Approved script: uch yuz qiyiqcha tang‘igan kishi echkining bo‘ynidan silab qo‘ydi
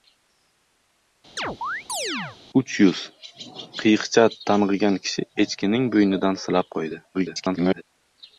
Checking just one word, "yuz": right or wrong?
right